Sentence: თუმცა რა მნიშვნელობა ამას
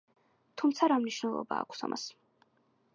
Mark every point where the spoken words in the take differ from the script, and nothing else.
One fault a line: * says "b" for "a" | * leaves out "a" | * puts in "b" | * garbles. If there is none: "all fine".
* puts in "აქვს"